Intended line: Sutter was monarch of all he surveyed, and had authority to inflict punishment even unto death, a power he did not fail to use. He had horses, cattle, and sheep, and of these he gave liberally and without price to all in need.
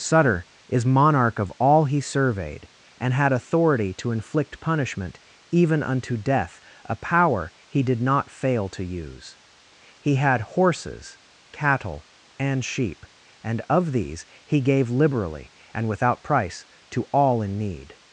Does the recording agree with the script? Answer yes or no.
no